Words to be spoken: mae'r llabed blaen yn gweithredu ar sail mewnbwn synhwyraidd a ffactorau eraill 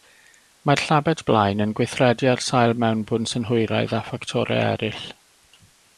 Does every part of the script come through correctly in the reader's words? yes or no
yes